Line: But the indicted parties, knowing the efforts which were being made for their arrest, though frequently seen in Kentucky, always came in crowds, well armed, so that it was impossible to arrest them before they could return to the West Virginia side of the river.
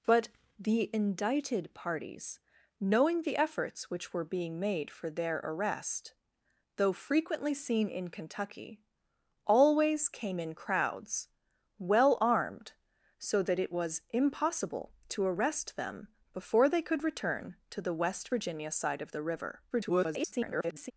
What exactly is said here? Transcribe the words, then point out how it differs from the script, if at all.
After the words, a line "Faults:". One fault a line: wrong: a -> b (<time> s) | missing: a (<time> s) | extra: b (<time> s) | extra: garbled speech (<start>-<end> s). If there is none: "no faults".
But the indicted parties, knowing the efforts which were being made for their arrest, though frequently seen in Kentucky, always came in crowds, well armed, so that it was impossible to arrest them before they could return to the West Virginia side of the river. [garbled]
Faults:
extra: garbled speech (19.7-20.9 s)